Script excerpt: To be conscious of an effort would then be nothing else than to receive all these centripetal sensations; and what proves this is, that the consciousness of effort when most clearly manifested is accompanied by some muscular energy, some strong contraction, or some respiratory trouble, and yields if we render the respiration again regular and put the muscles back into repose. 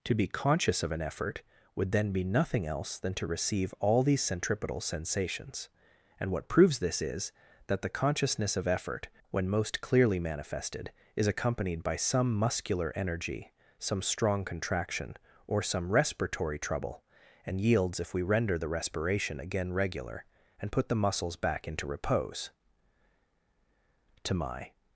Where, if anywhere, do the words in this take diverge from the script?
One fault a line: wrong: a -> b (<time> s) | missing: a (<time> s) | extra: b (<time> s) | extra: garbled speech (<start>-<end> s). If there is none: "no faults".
extra: To my (24.2 s)